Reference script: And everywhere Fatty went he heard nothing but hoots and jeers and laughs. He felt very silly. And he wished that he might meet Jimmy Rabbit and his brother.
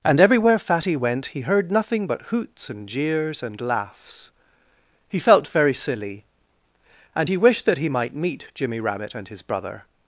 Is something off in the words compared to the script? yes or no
no